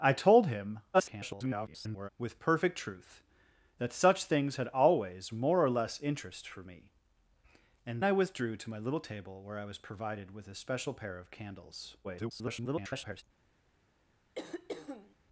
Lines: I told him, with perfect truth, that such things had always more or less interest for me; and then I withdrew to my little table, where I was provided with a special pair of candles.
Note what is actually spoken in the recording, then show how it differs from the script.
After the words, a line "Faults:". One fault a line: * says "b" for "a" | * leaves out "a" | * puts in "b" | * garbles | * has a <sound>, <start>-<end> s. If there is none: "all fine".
I told him, [garbled] with perfect truth, that such things had always more or less interest for me; and I withdrew to my little table, where I was provided with a special pair of candles. [garbled]
Faults:
* garbles
* leaves out "then"
* garbles
* has a throat clearing, 14.3-15.1 s